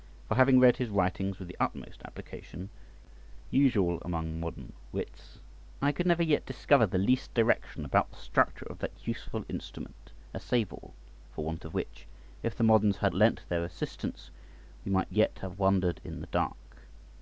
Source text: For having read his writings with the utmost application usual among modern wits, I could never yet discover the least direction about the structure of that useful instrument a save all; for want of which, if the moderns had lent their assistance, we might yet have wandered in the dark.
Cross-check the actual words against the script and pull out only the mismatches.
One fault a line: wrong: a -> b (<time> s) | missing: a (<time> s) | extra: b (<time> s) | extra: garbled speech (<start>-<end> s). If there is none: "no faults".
no faults